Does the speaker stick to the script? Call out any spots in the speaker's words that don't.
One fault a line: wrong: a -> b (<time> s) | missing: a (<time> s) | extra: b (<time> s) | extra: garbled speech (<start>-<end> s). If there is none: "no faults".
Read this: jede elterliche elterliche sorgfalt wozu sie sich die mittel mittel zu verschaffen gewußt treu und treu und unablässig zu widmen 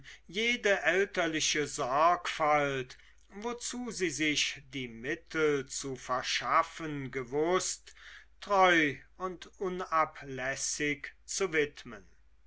missing: elterliche (1.7 s)
missing: mittel (5.7 s)
missing: treu und (9.5 s)